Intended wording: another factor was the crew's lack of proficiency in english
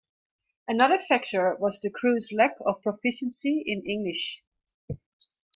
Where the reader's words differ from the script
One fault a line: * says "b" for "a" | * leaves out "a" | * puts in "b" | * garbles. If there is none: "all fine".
all fine